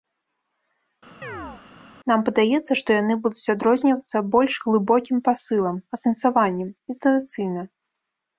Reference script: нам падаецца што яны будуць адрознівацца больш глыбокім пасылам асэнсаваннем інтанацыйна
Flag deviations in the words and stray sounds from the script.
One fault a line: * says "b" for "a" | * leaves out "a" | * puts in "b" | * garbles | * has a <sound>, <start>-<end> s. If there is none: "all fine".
* has a chirp, 1.2-1.6 s